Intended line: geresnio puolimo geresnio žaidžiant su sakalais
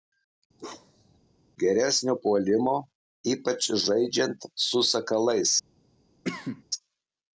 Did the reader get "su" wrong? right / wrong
right